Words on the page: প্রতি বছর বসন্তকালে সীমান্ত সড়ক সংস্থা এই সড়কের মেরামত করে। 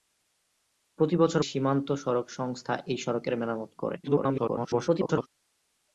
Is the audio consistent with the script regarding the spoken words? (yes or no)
no